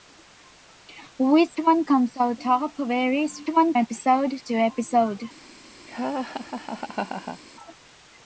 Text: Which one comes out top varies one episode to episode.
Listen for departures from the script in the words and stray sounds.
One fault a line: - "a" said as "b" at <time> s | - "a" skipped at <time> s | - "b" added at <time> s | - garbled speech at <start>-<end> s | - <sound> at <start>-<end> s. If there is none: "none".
- laugh at 5.9-7.4 s